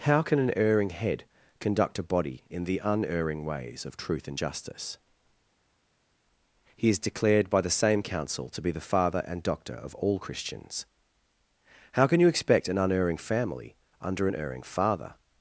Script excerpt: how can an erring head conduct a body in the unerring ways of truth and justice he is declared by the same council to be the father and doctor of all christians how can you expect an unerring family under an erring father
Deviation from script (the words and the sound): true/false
false